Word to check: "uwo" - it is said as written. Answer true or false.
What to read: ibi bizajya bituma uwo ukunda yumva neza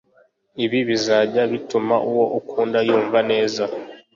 true